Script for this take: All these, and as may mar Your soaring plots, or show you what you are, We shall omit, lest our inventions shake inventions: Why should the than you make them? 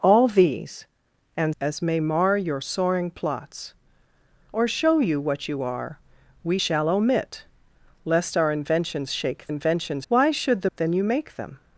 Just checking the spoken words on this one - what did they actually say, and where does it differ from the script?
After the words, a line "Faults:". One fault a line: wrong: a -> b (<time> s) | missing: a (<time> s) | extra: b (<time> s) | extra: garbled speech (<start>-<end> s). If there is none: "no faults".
All these, and as may mar Your soaring plots, or show you what you are, We shall omit, lest our inventions shake inventions: Why should the than you make them?
Faults:
no faults